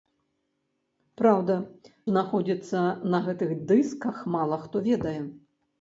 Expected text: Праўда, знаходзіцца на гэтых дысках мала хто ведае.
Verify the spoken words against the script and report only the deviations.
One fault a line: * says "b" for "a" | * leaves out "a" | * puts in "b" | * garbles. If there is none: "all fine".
all fine